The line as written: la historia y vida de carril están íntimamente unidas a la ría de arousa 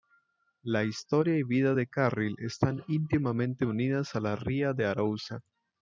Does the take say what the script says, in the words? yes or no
yes